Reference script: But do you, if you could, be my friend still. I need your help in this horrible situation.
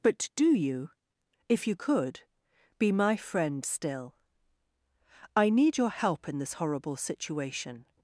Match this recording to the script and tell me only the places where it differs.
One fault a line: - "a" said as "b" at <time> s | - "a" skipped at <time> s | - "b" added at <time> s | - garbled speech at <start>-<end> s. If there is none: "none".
none